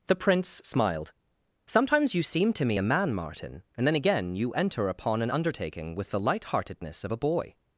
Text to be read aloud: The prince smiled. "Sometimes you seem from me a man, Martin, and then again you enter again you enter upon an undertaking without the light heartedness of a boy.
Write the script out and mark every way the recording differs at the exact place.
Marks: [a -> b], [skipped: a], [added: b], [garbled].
The prince smiled. "Sometimes you seem [from -> to] me a man, Martin, and then again you enter [skipped: again you enter] upon an undertaking [without -> with] the light heartedness of a boy.